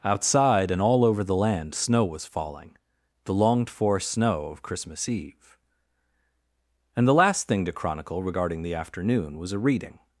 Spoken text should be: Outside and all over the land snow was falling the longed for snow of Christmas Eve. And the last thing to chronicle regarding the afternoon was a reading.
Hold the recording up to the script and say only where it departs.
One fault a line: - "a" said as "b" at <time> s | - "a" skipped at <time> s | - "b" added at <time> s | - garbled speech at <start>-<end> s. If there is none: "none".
none